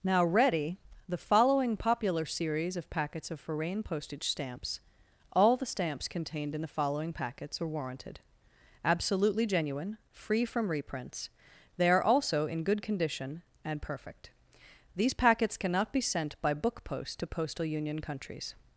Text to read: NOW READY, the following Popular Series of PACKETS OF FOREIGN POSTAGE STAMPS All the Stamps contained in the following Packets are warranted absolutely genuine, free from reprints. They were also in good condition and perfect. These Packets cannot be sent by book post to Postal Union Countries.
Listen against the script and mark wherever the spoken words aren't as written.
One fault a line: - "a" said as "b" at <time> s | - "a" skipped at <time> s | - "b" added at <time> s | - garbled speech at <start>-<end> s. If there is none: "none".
- "were" said as "are" at 11.9 s